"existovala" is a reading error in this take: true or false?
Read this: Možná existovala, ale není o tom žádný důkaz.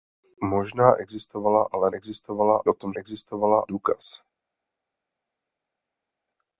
false